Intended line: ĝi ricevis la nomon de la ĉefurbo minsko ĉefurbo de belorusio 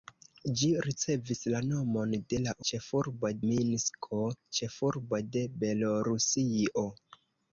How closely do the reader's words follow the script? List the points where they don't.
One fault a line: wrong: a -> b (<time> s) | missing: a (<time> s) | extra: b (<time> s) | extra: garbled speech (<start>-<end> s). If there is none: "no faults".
no faults